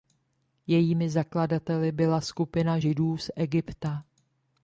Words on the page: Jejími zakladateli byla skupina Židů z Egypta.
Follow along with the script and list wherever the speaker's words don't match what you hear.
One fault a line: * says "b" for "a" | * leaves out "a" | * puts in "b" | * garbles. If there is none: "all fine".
all fine